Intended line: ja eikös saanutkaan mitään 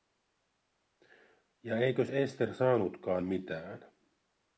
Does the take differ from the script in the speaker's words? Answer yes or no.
yes